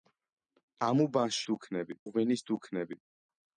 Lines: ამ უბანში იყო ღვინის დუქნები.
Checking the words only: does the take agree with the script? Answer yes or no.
no